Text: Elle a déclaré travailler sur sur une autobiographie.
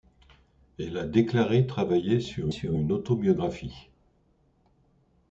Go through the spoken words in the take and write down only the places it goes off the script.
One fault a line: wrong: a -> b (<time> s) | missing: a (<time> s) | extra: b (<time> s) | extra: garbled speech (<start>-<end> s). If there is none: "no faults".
no faults